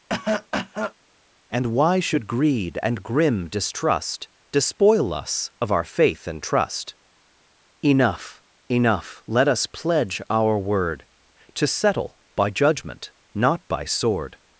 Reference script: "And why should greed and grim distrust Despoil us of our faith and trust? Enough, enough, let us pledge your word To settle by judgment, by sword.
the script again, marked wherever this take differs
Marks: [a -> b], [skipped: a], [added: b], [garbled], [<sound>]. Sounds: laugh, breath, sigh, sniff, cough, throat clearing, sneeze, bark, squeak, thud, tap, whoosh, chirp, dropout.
[cough] "And why should greed and grim distrust Despoil us of our faith and trust? Enough, enough, let us pledge [your -> our] word To settle by judgment, [added: not] by sword.